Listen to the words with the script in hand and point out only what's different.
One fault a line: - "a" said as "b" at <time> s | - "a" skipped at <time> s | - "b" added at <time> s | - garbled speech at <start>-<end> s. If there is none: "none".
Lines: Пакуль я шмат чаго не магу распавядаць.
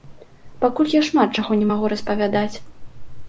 none